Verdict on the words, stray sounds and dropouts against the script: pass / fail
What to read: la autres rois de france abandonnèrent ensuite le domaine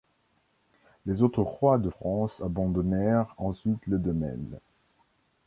fail